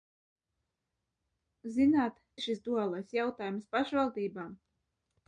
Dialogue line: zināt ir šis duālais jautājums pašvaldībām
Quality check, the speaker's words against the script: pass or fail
pass